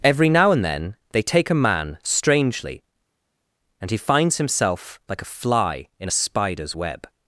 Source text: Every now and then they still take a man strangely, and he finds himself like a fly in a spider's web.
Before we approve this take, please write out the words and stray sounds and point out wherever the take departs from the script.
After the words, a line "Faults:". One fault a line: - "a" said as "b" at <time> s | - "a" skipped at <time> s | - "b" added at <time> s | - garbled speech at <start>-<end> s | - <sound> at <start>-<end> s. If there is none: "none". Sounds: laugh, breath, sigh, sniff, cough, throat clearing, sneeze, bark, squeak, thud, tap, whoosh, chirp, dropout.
Every now and then they take a man strangely, and he finds himself like a fly in a spider's web.
Faults:
- "still" skipped at 1.2 s